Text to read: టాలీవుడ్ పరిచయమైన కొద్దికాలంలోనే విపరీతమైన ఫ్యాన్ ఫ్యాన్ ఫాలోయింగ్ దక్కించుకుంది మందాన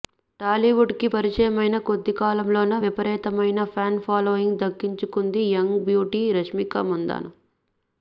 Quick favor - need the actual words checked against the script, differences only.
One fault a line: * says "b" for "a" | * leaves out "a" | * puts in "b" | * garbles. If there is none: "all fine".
* puts in "కి"
* leaves out "ఫ్యాన్"
* puts in "యంగ్ బ్యూటీ రష్మిక"